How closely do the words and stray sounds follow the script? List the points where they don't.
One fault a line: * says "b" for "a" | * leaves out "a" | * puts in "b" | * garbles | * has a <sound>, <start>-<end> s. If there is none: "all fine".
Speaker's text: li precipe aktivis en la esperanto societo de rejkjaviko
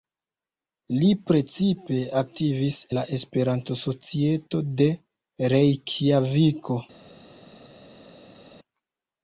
* leaves out "en"